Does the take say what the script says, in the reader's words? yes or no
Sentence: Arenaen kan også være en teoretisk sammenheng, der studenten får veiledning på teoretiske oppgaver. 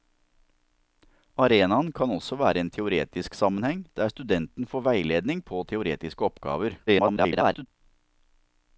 no